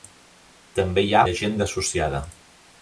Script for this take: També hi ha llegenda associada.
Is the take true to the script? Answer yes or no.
yes